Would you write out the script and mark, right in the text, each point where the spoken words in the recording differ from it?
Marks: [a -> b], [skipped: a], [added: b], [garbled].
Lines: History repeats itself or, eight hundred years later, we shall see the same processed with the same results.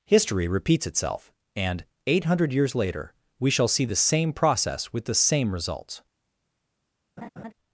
History repeats itself [or, -> and] eight hundred years later, we shall see the same [processed -> process] with the same results.